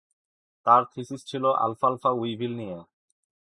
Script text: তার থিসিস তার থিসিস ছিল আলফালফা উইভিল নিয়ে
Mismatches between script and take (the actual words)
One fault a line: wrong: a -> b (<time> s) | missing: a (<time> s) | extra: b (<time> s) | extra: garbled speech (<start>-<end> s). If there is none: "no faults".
missing: তার থিসিস (1.2 s)